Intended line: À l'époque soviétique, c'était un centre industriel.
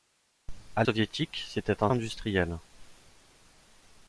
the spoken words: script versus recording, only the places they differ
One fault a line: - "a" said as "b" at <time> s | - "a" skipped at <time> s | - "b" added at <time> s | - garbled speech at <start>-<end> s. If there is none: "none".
- "l'époque" skipped at 0.8 s
- "centre" skipped at 1.9 s